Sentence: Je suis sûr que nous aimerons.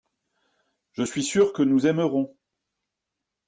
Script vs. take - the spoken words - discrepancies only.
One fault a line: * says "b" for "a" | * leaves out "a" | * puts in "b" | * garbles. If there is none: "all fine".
all fine